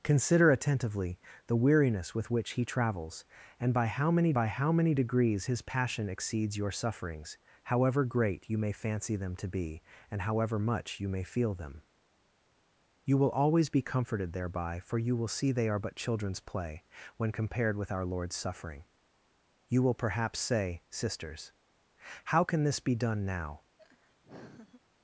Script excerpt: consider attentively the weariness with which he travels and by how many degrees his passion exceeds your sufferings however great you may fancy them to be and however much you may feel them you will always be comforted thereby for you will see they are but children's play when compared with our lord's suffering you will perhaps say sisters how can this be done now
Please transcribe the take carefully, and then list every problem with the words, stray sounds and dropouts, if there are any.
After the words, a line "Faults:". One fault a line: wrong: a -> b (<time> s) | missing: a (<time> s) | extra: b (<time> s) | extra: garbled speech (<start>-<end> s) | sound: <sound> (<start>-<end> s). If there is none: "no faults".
consider attentively the weariness with which he travels and by how many by how many degrees his passion exceeds your sufferings however great you may fancy them to be and however much you may feel them you will always be comforted thereby for you will see they are but children's play when compared with our lord's suffering you will perhaps say sisters how can this be done now
Faults:
extra: by how many (4.3 s)
sound: laugh (23.8-24.8 s)